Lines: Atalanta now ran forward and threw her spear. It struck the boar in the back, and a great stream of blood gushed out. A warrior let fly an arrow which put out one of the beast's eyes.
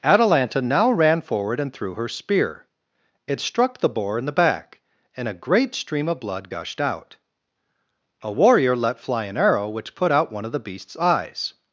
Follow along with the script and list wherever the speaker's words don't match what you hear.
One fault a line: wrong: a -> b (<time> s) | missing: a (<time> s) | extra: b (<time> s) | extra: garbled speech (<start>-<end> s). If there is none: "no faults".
no faults